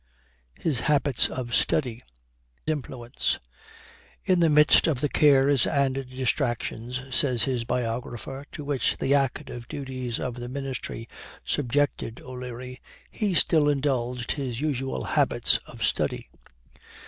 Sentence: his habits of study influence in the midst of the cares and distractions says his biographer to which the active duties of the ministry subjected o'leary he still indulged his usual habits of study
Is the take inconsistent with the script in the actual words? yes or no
no